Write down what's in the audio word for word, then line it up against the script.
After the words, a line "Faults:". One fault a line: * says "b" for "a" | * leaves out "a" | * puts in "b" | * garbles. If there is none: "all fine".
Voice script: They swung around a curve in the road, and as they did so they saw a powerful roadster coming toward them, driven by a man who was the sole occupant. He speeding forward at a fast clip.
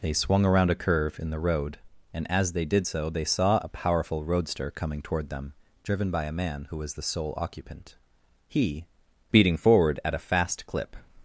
They swung around a curve in the road, and as they did so they saw a powerful roadster coming toward them, driven by a man who was the sole occupant. He speeding forward at a fast clip.
Faults:
all fine